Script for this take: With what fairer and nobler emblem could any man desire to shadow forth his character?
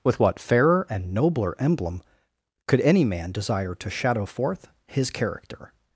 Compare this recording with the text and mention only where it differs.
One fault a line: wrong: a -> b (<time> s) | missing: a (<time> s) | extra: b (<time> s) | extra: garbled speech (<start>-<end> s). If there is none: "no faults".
no faults